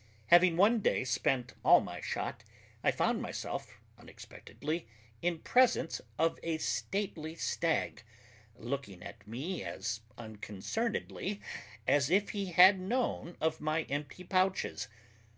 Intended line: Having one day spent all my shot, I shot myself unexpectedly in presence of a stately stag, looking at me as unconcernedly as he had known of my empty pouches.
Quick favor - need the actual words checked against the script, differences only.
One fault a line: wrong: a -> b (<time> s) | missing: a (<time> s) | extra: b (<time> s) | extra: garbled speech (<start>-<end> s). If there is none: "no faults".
wrong: shot -> found (2.9 s)
extra: if (12.1 s)